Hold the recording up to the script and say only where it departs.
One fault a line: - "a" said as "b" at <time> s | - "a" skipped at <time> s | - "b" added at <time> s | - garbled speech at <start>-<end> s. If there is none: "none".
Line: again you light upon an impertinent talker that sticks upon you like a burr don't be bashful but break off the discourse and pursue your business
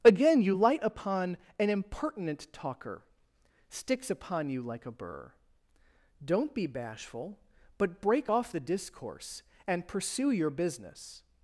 - "that" skipped at 3.0 s